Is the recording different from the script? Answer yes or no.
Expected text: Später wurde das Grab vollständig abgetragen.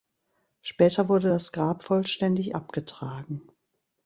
no